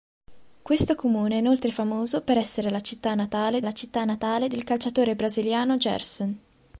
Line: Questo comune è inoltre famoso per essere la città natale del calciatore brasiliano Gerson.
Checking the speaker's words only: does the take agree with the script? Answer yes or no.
no